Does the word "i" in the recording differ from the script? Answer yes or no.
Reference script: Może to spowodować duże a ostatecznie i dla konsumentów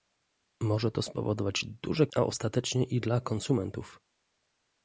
no